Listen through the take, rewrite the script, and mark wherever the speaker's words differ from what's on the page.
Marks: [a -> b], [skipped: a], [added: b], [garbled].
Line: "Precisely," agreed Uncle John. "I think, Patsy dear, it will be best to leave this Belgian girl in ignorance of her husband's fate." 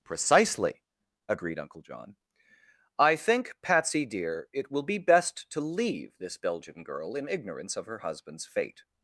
"Precisely," agreed Uncle John. "I think, Patsy dear, it will be best to leave this Belgian girl in ignorance of her husband's fate."